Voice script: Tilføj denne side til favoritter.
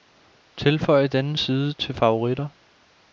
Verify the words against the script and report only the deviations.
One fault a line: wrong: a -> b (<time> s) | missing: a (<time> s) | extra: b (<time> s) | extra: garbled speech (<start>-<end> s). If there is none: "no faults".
no faults